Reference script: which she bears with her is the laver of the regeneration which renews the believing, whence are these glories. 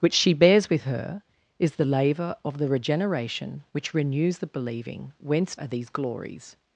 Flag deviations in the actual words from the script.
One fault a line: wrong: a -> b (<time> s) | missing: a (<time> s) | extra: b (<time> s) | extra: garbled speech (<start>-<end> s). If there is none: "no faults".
no faults